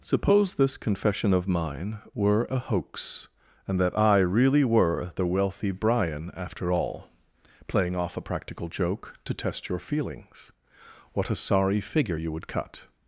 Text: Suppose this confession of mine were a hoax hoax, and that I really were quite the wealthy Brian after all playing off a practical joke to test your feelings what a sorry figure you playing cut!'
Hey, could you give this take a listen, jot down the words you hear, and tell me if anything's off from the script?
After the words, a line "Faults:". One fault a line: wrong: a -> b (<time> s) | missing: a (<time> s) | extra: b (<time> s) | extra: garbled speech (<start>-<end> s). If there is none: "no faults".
Suppose this confession of mine were a hoax, and that I really were the wealthy Brian after all playing off a practical joke to test your feelings what a sorry figure you would cut!'
Faults:
missing: hoax (3.3 s)
missing: quite (5.1 s)
wrong: playing -> would (12.3 s)